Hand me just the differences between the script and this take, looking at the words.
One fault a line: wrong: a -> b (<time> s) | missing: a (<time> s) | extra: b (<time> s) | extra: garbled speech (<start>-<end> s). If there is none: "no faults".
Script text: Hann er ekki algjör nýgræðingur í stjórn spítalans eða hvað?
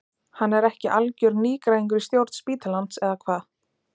no faults